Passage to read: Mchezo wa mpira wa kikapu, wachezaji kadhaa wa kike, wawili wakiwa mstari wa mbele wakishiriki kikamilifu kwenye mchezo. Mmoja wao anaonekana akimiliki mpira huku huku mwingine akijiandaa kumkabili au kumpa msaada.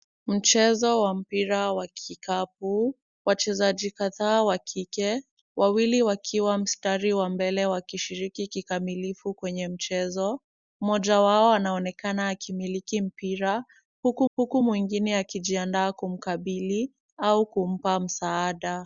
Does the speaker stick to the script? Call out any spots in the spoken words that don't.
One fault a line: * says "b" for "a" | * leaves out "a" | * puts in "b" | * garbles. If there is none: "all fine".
all fine